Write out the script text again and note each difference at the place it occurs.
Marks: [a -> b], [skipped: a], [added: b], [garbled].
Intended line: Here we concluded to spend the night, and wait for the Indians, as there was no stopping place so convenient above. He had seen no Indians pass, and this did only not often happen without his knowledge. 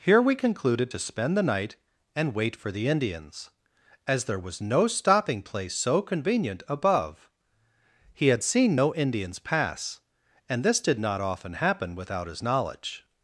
Here we concluded to spend the night, and wait for the Indians, as there was no stopping place so convenient above. He had seen no Indians pass, and this did [skipped: only] not often happen without his knowledge.